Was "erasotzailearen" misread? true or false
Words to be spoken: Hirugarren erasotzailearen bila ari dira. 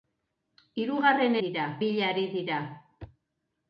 true